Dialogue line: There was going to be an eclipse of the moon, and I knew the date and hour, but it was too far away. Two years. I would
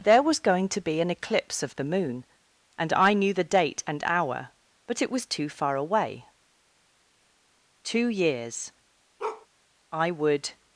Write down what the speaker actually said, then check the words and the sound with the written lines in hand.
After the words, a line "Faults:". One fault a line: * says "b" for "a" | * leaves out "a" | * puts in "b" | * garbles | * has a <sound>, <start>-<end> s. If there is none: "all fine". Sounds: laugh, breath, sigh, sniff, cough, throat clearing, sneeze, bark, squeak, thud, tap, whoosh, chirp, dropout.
There was going to be an eclipse of the moon, and I knew the date and hour, but it was too far away. Two years. I would
Faults:
* has a bark, 9.2-9.5 s